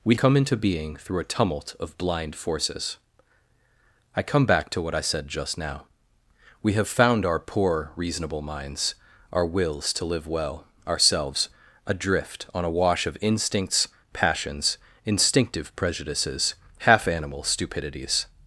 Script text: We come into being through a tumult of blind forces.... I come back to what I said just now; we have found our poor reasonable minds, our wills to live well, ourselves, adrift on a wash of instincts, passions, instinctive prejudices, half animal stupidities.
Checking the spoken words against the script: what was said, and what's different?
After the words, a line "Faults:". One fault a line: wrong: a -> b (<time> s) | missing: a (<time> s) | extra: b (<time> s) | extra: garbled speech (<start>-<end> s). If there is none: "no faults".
We come into being through a tumult of blind forces.... I come back to what I said just now; we have found our poor reasonable minds, our wills to live well, ourselves, adrift on a wash of instincts, passions, instinctive prejudices, half animal stupidities.
Faults:
no faults